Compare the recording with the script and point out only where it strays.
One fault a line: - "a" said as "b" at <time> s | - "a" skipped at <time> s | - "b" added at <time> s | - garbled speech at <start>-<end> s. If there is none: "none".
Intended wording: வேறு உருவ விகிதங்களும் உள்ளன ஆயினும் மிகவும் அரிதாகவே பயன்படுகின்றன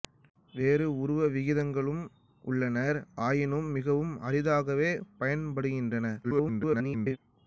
- garbled speech at 6.2-7.2 s